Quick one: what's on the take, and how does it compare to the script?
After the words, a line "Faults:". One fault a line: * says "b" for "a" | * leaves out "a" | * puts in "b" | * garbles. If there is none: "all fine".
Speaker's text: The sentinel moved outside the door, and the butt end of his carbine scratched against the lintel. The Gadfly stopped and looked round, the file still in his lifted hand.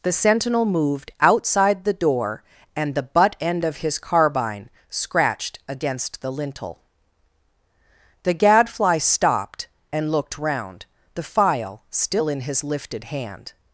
The sentinel moved outside the door, and the butt end of his carbine scratched against the lintel. The Gadfly stopped and looked round, the file still in his lifted hand.
Faults:
all fine